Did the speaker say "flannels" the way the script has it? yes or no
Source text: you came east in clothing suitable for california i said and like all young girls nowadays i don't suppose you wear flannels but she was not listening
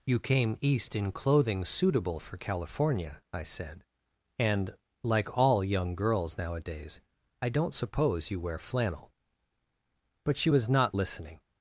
no